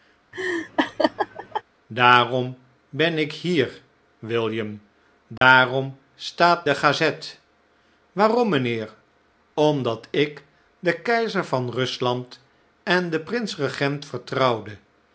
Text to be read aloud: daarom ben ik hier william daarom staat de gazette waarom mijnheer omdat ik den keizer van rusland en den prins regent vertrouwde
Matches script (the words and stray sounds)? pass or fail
fail